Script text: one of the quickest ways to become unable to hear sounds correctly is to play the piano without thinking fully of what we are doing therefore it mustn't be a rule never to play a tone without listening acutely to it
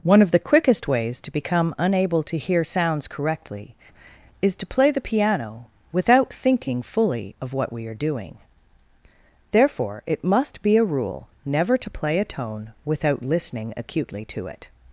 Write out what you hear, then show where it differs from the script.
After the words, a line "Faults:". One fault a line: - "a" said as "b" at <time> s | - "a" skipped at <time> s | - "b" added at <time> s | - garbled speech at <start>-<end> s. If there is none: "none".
one of the quickest ways to become unable to hear sounds correctly is to play the piano without thinking fully of what we are doing therefore it must be a rule never to play a tone without listening acutely to it
Faults:
- "mustn't" said as "must" at 10.2 s